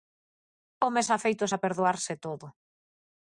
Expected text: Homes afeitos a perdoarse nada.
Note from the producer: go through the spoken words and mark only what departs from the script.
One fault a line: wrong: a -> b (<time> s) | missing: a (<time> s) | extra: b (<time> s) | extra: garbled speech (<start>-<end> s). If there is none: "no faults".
wrong: nada -> todo (2.2 s)